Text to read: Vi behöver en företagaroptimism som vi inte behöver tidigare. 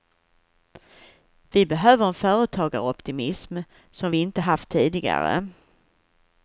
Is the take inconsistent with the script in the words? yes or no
yes